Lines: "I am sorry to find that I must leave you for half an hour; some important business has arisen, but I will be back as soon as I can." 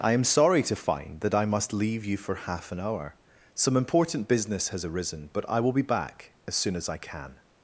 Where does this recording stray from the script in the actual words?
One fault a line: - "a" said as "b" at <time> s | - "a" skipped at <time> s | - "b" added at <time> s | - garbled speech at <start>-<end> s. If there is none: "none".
none